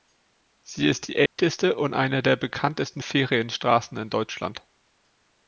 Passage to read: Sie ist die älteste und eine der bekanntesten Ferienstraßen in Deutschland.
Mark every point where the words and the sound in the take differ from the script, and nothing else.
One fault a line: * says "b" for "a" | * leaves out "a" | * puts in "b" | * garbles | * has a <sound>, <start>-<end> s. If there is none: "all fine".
* has a dropout, 1.3-1.4 s